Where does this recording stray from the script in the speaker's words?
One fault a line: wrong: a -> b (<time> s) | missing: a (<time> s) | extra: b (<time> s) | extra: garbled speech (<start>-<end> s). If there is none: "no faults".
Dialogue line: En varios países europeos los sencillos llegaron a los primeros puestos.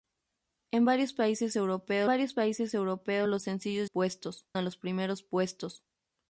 extra: varios países europeos (2.0 s)
wrong: llegaron -> puestos (3.8 s)